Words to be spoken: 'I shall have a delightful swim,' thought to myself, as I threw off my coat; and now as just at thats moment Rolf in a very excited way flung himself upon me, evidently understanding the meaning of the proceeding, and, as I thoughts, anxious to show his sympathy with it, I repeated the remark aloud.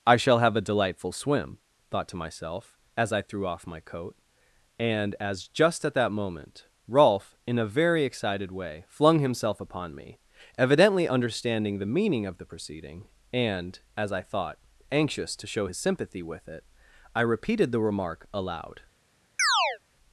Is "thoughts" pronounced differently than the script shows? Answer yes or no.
yes